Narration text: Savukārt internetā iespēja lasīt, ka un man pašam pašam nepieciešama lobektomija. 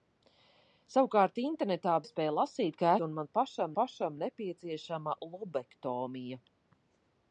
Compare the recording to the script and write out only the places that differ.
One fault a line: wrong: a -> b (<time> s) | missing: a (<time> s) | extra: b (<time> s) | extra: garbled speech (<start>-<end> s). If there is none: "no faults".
no faults